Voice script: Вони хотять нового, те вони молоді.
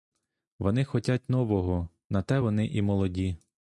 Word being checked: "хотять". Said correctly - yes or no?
yes